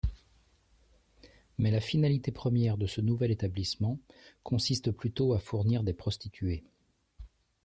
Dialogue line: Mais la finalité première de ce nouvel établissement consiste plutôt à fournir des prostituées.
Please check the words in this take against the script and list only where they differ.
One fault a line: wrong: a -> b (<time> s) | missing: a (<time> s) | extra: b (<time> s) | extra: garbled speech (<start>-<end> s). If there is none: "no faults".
no faults